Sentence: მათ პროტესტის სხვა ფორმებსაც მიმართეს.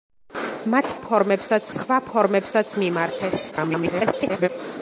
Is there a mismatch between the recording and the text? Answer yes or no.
yes